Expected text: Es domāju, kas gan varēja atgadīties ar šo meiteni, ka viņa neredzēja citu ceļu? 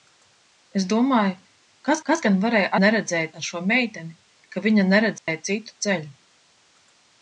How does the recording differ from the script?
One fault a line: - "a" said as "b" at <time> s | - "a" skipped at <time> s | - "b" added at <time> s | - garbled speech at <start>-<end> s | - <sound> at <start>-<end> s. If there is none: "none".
- "kas" added at 2.1 s
- "atgadīties" said as "neredzēja" at 2.8 s
- dropout at 5.2-5.3 s